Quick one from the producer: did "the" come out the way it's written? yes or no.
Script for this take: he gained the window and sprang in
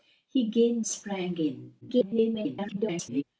no